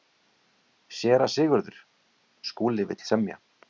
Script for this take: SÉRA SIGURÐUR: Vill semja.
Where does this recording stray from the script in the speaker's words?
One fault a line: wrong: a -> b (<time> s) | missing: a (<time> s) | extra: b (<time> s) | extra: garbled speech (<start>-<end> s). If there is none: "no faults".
extra: Skúli (2.5 s)